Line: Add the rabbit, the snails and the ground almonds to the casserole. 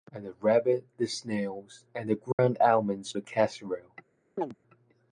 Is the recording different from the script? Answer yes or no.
yes